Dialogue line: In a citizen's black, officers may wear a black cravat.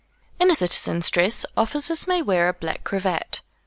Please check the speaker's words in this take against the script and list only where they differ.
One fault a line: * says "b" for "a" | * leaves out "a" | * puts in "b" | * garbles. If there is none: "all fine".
* says "dress" for "black"